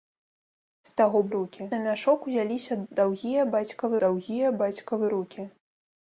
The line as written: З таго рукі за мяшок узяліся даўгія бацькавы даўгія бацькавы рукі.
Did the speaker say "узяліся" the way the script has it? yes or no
yes